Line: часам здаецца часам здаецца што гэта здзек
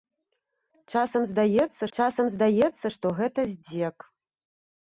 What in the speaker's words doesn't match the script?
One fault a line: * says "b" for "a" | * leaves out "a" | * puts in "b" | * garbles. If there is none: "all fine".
all fine